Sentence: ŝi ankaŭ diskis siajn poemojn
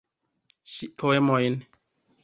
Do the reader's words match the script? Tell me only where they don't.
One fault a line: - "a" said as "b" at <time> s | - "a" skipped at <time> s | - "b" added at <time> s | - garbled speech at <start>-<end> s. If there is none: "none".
- "ankaŭ diskis siajn" skipped at 0.9 s